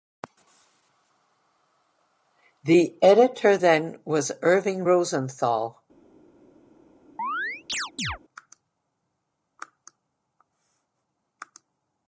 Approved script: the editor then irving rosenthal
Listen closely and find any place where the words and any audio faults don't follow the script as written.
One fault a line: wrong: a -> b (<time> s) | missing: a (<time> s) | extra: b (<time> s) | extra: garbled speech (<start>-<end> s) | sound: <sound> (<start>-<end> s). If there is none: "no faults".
extra: was (4.0 s)
sound: chirp (7.2-8.2 s)